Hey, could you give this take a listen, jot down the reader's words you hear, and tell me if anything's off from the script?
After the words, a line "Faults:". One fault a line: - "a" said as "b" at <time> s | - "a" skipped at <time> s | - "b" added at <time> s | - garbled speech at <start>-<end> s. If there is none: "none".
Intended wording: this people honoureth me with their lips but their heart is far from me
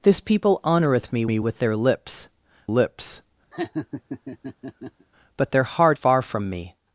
this people honoureth me me with their lips lips but their heart far from me
Faults:
- "me" added at 1.3 s
- "lips" added at 2.7 s
- "is" skipped at 6.0 s